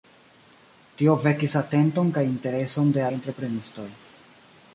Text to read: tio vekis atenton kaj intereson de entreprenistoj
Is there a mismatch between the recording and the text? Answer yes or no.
no